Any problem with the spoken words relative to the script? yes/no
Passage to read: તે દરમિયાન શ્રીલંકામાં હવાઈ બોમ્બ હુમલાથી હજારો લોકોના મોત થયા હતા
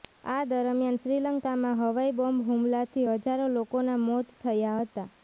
yes